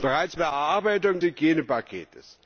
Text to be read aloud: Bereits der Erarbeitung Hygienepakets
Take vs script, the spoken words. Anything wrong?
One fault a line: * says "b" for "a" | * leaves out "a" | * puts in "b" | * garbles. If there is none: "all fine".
all fine